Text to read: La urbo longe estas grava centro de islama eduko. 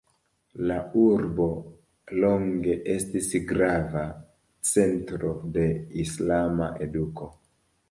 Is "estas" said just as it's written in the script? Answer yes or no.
no